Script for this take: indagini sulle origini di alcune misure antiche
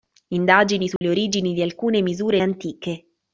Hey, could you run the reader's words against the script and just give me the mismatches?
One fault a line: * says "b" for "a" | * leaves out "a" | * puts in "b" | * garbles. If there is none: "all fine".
all fine